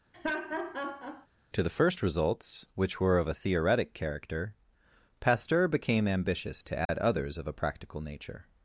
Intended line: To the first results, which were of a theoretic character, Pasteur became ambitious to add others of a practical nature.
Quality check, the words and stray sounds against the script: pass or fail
fail